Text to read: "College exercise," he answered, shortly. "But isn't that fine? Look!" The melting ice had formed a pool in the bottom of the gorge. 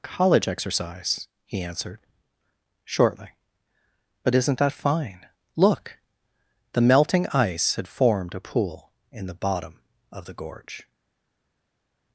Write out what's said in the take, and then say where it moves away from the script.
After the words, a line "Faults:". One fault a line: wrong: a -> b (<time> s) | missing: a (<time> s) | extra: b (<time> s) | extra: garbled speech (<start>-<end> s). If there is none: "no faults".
"College exercise," he answered, shortly. "But isn't that fine? Look!" The melting ice had formed a pool in the bottom of the gorge.
Faults:
no faults